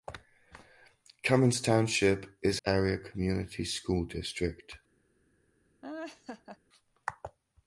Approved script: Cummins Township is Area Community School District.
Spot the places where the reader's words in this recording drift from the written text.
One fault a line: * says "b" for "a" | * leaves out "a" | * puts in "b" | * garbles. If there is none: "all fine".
all fine